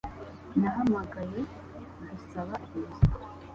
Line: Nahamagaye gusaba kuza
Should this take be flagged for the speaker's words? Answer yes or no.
no